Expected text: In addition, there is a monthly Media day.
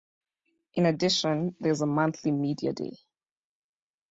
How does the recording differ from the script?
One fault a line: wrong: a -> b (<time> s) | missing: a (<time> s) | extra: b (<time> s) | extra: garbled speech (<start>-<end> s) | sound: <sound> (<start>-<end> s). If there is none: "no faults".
no faults